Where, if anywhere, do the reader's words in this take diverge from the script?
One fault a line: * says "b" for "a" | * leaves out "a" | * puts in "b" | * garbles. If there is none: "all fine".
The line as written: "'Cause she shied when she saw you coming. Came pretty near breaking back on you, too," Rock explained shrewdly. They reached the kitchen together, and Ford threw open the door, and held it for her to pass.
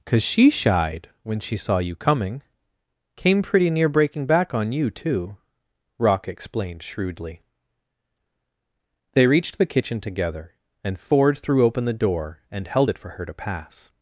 all fine